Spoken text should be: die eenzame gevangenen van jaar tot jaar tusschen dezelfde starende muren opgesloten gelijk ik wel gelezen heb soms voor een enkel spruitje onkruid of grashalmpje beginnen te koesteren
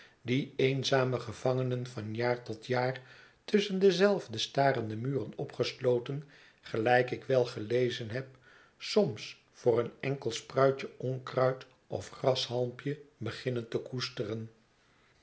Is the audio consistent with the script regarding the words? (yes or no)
yes